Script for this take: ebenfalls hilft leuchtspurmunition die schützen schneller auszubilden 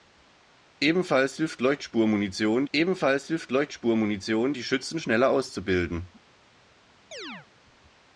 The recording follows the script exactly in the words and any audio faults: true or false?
false